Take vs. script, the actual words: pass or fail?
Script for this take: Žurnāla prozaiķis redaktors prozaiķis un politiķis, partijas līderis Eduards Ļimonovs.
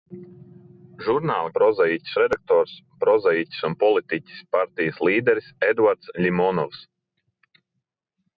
pass